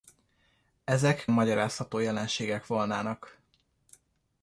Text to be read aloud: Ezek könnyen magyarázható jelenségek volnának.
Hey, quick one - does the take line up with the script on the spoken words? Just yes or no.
no